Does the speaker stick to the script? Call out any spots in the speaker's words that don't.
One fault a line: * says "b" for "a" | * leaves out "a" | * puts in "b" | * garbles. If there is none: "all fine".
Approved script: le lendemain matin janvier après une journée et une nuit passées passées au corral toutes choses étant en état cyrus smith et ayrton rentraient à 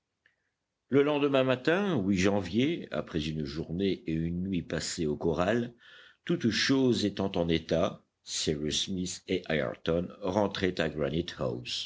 * leaves out "passées"